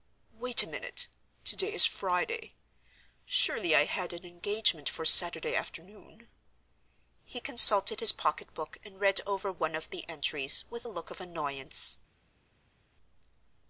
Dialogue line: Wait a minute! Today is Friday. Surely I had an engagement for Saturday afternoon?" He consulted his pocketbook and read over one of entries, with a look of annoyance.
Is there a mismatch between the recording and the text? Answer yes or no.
yes